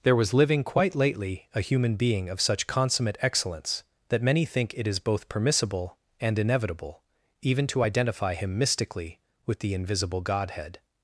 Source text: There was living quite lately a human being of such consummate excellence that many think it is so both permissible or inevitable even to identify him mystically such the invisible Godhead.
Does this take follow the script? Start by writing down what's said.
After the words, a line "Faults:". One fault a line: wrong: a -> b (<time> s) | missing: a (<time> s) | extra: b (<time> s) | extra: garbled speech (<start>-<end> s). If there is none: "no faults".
There was living quite lately a human being of such consummate excellence that many think it is both permissible and inevitable even to identify him mystically with the invisible Godhead.
Faults:
missing: so (5.0 s)
wrong: or -> and (6.2 s)
wrong: such -> with (9.5 s)